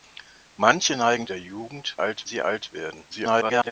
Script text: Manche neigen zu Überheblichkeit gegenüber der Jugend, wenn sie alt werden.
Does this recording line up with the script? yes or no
no